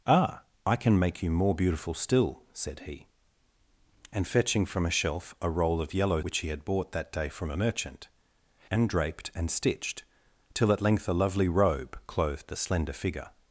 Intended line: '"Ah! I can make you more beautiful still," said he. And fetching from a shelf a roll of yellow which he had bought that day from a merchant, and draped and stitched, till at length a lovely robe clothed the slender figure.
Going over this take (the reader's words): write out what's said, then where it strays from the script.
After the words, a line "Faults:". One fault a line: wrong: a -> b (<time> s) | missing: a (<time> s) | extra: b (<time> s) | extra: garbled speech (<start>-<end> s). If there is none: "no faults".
'"Ah! I can make you more beautiful still," said he. And fetching from a shelf a roll of yellow which he had bought that day from a merchant, and draped and stitched, till at length a lovely robe clothed the slender figure.
Faults:
no faults